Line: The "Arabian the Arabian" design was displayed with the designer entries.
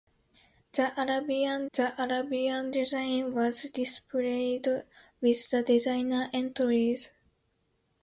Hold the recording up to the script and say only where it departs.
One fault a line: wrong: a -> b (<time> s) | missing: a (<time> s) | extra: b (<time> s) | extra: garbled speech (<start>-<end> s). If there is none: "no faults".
no faults